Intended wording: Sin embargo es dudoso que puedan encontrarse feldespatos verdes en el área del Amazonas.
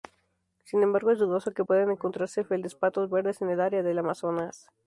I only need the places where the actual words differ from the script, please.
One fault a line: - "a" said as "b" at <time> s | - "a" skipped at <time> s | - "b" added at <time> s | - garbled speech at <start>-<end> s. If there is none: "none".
none